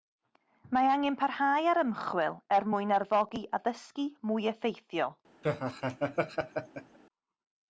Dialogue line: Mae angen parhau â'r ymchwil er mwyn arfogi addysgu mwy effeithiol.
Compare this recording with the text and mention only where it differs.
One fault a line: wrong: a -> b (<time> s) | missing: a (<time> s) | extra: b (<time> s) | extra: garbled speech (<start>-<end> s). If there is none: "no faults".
no faults